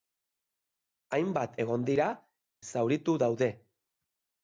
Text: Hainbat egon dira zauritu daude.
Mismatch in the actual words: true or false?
false